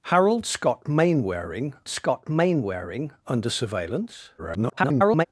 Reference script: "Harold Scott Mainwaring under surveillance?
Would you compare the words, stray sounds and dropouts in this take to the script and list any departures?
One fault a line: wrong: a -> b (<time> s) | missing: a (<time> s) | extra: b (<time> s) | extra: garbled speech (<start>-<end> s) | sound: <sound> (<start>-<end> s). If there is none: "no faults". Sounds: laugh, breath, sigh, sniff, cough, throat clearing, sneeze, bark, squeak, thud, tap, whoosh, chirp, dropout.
extra: Scott Mainwaring (1.9 s)
extra: garbled speech (4.4-5.3 s)